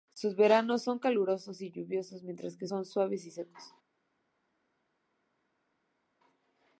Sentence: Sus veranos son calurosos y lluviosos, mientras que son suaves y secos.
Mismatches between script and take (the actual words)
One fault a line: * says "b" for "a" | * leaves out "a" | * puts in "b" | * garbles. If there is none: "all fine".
all fine